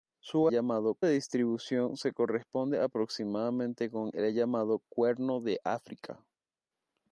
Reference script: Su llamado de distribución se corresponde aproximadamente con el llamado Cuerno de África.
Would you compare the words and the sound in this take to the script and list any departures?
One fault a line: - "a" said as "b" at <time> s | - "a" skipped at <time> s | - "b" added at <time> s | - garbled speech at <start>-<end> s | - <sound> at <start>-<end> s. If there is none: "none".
none